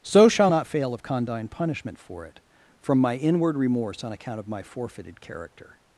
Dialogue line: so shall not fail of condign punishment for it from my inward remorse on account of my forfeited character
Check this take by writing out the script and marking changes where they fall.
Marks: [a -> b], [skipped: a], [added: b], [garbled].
so shall not fail of condign punishment for it from my inward remorse on account of my forfeited character